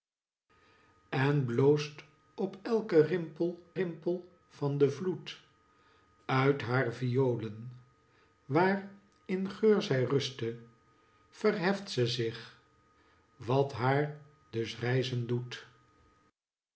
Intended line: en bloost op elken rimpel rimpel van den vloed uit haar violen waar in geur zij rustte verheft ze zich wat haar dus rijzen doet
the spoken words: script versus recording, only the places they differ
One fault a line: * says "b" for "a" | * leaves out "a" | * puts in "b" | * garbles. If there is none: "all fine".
all fine